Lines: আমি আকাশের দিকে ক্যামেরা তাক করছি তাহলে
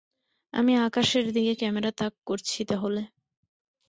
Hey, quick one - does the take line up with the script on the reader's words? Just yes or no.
yes